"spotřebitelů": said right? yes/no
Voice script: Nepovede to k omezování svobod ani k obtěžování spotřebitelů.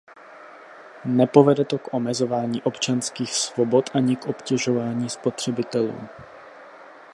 yes